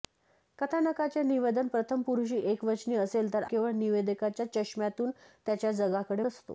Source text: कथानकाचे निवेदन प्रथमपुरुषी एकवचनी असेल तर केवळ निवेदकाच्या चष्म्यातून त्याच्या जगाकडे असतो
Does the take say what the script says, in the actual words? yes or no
yes